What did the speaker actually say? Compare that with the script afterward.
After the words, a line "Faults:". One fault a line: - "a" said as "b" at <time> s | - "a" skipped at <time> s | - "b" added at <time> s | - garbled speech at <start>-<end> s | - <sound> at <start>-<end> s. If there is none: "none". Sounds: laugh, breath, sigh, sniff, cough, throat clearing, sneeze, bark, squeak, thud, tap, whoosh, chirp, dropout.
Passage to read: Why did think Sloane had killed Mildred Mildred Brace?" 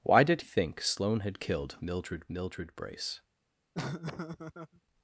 Why did think Sloane had killed Mildred Mildred Brace?"
Faults:
- laugh at 3.7-4.8 s